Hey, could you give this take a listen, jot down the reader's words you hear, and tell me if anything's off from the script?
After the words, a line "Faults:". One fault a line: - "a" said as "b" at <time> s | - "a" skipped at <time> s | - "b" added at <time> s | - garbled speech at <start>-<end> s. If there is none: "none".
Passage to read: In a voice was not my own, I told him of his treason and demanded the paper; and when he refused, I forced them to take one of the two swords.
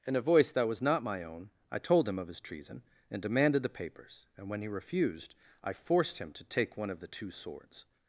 In a voice that was not my own, I told him of his treason and demanded the papers; and when he refused, I forced him to take one of the two swords.
Faults:
- "that" added at 0.5 s
- "paper" said as "papers" at 3.7 s
- "them" said as "him" at 6.2 s